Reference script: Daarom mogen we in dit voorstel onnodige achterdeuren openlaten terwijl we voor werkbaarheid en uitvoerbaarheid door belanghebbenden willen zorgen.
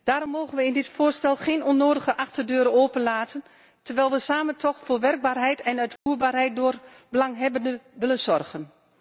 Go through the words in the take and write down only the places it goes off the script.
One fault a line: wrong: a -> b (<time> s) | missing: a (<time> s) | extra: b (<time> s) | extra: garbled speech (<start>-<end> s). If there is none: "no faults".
extra: geen (1.4 s)
extra: samen toch (4.2 s)